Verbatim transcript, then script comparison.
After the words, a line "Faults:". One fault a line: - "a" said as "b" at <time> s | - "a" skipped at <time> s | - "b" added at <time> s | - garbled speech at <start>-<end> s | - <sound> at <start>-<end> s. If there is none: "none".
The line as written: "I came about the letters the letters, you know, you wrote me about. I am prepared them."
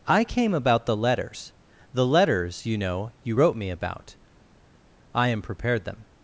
"I came about the letters the letters, you know, you wrote me about. I am prepared them."
Faults:
none